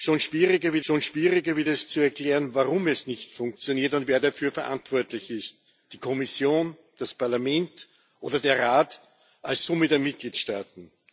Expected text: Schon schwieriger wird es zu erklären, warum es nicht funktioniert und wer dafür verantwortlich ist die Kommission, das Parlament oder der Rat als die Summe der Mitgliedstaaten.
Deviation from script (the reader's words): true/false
true